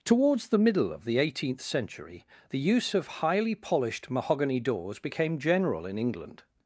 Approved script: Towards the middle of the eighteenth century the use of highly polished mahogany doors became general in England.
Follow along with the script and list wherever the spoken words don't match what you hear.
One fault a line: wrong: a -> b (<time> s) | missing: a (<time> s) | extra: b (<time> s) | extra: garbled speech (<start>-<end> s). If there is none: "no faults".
no faults